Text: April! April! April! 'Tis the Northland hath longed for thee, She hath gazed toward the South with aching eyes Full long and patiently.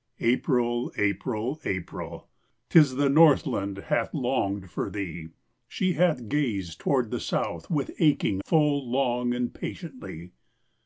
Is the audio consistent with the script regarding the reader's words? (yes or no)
no